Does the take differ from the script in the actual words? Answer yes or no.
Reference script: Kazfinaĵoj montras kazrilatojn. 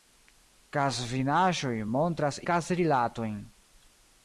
no